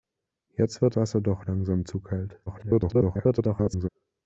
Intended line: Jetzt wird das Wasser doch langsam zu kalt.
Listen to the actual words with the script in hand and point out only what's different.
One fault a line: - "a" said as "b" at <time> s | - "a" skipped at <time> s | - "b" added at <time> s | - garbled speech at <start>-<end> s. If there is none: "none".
- "das" skipped at 1.0 s
- garbled speech at 2.5-3.9 s